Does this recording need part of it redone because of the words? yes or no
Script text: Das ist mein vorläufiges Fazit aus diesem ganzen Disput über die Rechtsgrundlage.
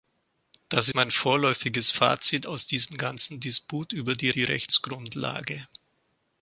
yes